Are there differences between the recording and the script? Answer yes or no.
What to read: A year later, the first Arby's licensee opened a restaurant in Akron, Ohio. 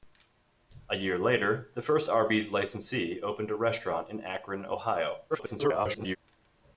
yes